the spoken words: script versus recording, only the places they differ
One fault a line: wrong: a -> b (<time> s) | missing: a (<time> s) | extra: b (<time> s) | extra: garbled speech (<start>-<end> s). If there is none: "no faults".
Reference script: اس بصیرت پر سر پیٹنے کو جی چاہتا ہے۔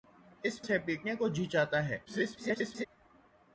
missing: بصیرت پر (0.6 s)
extra: garbled speech (2.0-2.9 s)